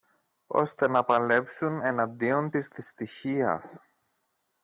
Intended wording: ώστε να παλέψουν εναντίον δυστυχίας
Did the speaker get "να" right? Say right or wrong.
right